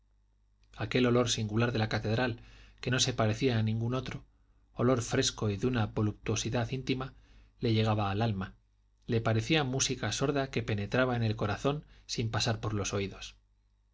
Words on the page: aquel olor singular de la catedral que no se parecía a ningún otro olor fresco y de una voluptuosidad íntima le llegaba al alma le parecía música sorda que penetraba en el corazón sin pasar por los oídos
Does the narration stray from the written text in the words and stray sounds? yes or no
no